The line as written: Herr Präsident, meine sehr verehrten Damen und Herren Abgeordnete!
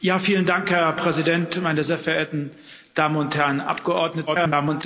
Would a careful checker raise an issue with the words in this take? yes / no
yes